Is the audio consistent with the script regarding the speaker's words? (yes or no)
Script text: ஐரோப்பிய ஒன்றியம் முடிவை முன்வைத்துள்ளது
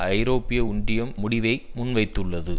yes